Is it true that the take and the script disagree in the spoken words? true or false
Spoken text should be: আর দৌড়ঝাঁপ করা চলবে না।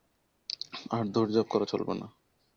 false